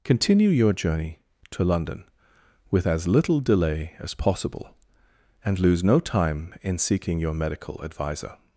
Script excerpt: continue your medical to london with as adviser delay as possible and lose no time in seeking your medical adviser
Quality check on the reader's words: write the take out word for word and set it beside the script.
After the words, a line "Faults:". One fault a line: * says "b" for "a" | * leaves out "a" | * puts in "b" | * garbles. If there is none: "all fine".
continue your journey to london with as little delay as possible and lose no time in seeking your medical adviser
Faults:
* says "journey" for "medical"
* says "little" for "adviser"